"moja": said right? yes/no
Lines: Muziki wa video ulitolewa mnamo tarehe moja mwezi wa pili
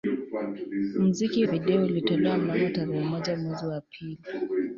yes